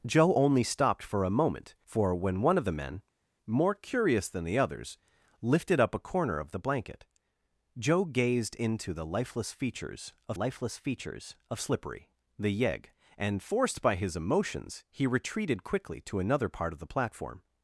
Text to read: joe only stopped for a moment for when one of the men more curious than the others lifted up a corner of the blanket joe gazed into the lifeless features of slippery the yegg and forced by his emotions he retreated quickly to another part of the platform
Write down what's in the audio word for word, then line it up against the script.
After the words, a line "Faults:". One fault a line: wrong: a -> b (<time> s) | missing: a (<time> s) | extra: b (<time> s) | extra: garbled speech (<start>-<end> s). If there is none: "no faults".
joe only stopped for a moment for when one of the men more curious than the others lifted up a corner of the blanket joe gazed into the lifeless features of lifeless features of slippery the yegg and forced by his emotions he retreated quickly to another part of the platform
Faults:
extra: lifeless features of (10.3 s)